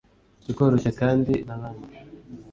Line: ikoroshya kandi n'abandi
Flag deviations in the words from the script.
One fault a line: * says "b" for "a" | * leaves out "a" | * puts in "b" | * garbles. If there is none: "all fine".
all fine